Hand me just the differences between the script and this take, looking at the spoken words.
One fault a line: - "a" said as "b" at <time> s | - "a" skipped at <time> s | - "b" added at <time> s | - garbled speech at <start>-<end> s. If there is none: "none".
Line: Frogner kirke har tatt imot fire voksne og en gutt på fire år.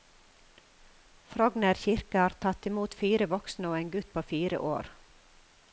none